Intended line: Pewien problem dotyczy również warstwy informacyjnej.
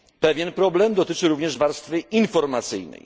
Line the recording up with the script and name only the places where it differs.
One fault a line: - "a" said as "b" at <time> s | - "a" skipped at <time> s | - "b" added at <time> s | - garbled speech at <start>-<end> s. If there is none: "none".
none